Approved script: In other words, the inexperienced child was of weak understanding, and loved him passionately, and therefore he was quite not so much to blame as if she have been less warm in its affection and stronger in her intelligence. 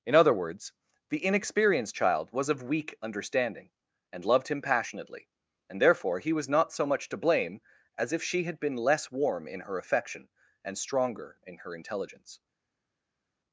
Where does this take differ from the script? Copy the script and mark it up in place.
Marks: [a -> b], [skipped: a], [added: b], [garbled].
In other words, the inexperienced child was of weak understanding, and loved him passionately, and therefore he was [skipped: quite] not so much to blame as if she [have -> had] been less warm in [its -> her] affection and stronger in her intelligence.